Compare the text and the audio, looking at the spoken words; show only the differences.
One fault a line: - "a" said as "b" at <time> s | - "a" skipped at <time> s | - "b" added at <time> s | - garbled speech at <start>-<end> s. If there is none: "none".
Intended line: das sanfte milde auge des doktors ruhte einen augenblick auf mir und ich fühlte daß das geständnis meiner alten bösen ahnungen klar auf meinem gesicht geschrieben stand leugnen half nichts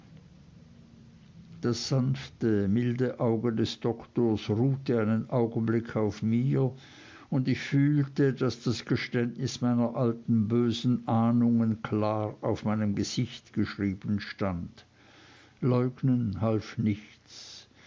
none